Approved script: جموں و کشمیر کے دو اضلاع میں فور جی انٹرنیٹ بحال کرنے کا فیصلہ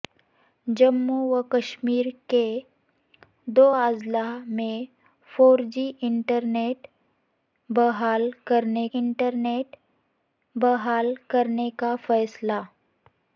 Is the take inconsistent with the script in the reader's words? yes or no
yes